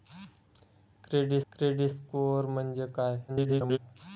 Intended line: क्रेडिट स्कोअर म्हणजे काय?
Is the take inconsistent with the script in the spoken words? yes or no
yes